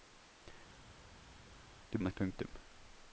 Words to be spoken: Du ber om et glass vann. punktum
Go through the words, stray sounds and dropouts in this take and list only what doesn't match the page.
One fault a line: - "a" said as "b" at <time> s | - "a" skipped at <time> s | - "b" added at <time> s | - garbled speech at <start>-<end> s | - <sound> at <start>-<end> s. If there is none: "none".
- "ber" skipped at 2.0 s
- "glass vann" skipped at 2.1 s